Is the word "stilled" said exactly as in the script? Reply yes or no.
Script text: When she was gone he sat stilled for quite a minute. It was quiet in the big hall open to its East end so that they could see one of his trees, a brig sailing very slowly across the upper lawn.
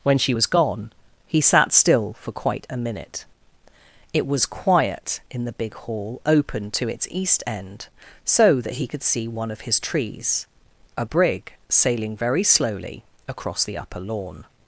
no